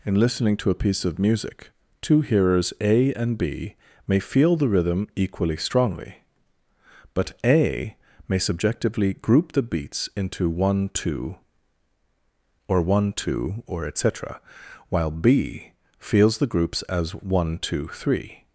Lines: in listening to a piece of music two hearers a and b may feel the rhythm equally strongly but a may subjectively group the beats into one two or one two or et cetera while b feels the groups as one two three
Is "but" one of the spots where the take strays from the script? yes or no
no